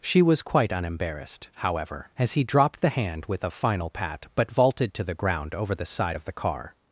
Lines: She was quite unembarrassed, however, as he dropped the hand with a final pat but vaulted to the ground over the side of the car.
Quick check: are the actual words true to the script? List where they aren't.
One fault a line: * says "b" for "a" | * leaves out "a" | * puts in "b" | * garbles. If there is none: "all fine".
all fine